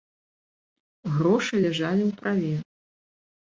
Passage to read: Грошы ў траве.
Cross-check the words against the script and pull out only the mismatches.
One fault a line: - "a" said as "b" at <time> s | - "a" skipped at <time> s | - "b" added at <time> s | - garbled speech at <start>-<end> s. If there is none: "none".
- "ляжалі" added at 1.6 s